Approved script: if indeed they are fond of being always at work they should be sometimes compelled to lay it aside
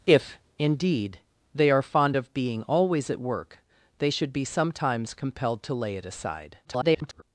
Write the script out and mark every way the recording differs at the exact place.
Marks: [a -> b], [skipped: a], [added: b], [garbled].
if indeed they are fond of being always at work they should be sometimes compelled to lay it aside [garbled]